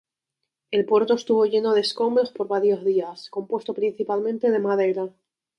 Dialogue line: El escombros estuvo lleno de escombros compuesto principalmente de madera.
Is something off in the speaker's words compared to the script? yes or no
yes